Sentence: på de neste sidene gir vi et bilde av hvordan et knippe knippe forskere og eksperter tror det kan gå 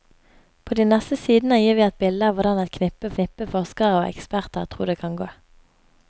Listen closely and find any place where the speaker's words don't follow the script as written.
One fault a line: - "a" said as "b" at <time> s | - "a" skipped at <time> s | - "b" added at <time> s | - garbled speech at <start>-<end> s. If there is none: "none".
none